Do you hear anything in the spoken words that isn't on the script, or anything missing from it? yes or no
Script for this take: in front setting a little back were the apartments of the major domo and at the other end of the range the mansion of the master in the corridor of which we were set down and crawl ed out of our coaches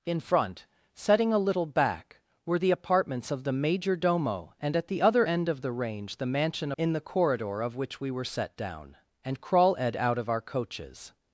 yes